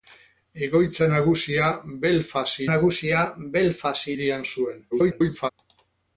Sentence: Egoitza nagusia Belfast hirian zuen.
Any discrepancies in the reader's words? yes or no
yes